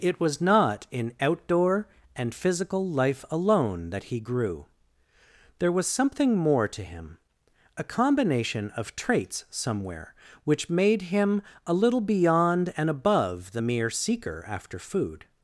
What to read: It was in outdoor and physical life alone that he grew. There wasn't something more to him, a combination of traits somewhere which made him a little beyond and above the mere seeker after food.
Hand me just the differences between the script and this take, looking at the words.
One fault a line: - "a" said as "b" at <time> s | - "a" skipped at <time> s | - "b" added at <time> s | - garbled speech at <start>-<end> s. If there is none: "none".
- "not" added at 0.4 s
- "wasn't" said as "was" at 5.7 s